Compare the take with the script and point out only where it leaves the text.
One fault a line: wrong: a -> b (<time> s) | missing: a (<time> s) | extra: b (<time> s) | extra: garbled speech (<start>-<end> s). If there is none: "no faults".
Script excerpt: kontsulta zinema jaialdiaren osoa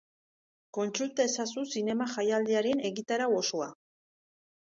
extra: ezazu (1.3 s)
extra: egitarau (2.9 s)